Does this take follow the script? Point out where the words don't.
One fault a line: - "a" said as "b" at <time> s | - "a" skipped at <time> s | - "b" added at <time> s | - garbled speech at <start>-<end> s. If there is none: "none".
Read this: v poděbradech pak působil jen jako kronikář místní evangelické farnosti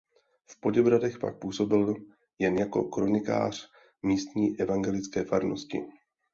none